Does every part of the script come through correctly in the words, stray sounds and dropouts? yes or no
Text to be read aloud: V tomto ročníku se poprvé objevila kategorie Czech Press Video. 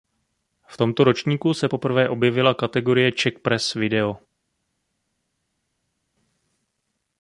yes